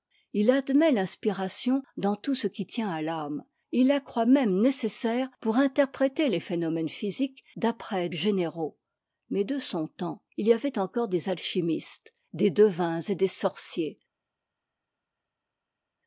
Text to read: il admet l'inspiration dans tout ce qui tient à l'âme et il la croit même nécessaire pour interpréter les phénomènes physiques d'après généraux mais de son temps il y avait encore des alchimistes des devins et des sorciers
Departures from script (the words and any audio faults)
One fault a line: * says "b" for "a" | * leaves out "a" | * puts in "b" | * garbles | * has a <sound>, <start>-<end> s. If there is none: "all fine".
all fine